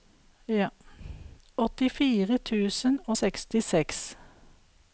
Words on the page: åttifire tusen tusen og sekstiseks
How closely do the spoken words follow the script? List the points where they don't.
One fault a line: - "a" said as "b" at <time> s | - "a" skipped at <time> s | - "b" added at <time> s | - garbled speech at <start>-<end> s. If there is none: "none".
- "tusen" skipped at 3.0 s